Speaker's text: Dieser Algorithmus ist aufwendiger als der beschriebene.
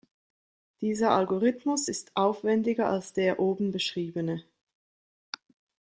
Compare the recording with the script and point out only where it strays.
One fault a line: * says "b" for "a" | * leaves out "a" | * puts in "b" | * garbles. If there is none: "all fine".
* puts in "oben"